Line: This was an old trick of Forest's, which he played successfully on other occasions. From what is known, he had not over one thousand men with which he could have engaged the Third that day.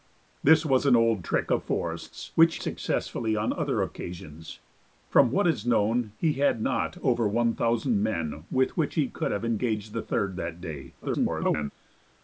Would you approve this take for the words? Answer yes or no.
no